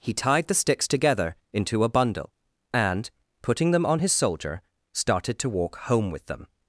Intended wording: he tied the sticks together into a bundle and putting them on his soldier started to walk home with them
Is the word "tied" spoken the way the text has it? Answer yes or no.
yes